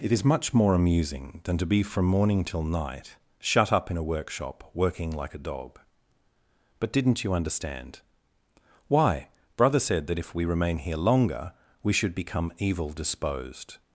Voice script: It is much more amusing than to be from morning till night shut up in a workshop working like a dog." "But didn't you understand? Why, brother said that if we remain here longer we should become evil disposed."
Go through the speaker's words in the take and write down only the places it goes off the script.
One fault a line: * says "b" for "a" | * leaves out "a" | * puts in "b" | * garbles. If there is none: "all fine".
all fine